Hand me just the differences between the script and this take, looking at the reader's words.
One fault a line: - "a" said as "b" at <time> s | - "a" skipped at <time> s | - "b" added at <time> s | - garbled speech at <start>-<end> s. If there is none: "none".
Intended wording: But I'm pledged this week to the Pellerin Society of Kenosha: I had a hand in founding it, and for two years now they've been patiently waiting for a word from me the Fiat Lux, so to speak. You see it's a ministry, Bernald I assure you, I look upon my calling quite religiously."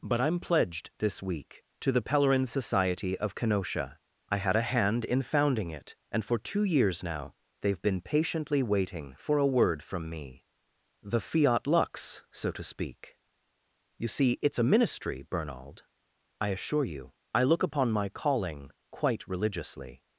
none